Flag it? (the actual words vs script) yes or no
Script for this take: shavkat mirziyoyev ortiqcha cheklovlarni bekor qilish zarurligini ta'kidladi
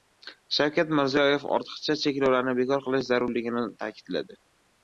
no